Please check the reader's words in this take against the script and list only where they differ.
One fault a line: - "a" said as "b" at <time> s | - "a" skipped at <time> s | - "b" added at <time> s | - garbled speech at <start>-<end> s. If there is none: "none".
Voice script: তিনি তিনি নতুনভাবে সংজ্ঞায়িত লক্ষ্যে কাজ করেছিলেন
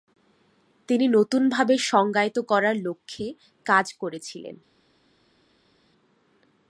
- "তিনি" skipped at 1.1 s
- "করার" added at 2.4 s